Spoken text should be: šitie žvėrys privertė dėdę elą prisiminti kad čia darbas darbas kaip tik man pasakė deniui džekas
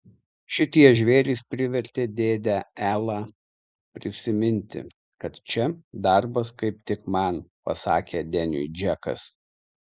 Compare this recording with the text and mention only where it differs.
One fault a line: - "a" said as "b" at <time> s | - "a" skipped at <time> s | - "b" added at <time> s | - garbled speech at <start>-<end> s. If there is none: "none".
- "darbas" skipped at 6.5 s